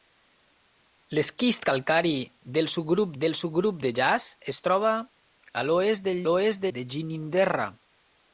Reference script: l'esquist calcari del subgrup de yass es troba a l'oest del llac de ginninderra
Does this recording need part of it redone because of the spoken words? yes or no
yes